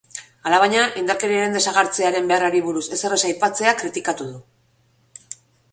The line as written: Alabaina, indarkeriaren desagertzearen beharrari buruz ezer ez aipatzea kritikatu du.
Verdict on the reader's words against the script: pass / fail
pass